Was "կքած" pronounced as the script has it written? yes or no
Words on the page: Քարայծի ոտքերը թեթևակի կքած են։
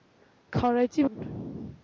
no